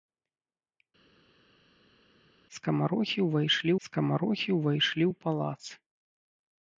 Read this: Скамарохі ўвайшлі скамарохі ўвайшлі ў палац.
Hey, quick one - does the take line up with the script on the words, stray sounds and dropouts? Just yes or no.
yes